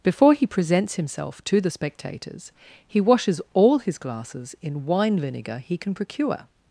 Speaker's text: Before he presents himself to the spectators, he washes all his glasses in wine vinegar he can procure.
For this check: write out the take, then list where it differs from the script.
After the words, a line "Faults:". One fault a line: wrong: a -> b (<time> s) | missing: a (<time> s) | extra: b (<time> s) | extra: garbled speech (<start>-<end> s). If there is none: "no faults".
Before he presents himself to the spectators, he washes all his glasses in wine vinegar he can procure.
Faults:
no faults